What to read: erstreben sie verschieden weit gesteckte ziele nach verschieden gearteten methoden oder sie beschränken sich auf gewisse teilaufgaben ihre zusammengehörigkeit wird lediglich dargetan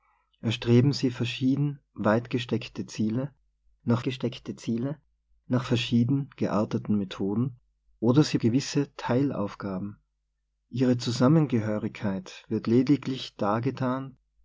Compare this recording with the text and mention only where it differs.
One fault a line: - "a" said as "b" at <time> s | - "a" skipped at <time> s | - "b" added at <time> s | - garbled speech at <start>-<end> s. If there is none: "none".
- "gesteckte ziele nach" added at 4.0 s
- "beschränken sich auf" skipped at 8.4 s